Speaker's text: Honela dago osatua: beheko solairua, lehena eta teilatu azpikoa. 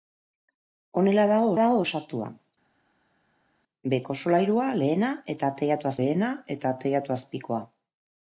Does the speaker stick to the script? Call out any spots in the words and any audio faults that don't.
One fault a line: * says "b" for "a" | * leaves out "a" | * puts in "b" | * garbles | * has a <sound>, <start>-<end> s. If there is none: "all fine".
* puts in "dago"
* puts in "lehena eta teilatu"